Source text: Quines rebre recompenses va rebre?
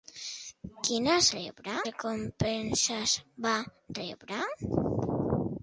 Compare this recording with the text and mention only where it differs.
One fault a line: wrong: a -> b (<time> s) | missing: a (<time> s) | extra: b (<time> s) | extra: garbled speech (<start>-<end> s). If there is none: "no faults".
no faults